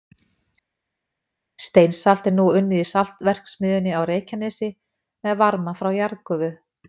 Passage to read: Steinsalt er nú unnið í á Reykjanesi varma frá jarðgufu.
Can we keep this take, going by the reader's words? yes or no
no